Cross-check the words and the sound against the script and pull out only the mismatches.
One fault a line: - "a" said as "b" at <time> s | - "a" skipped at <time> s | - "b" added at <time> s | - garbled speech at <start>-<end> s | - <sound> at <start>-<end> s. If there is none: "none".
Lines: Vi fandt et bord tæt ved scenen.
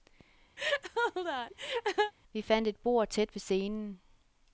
- laugh at 0.6-2.1 s